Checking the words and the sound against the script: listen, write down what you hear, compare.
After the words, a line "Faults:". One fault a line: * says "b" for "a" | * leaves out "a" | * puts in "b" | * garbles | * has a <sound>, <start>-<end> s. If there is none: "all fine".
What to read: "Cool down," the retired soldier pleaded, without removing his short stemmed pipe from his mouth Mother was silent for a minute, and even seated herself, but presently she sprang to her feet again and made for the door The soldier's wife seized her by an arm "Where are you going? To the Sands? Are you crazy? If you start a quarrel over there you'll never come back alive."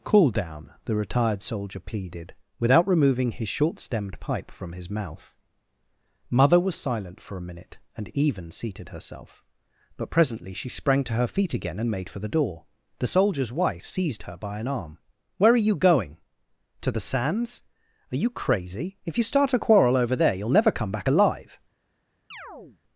"Cool down," the retired soldier pleaded, without removing his short stemmed pipe from his mouth Mother was silent for a minute, and even seated herself, but presently she sprang to her feet again and made for the door The soldier's wife seized her by an arm "Where are you going? To the Sands? Are you crazy? If you start a quarrel over there you'll never come back alive."
Faults:
* has a chirp, 22.3-22.8 s